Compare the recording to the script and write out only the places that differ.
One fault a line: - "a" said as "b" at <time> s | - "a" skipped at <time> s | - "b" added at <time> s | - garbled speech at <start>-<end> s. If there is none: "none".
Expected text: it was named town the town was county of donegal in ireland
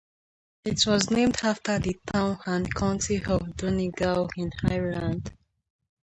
- "town" said as "after" at 1.4 s
- "was" said as "and" at 2.4 s